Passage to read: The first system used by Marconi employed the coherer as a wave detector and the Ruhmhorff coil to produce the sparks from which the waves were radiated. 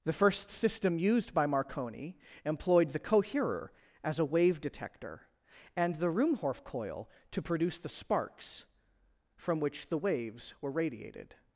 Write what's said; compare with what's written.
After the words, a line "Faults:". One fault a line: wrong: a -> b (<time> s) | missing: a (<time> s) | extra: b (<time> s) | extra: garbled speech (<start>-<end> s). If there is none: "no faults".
The first system used by Marconi employed the coherer as a wave detector and the Ruhmhorff coil to produce the sparks from which the waves were radiated.
Faults:
no faults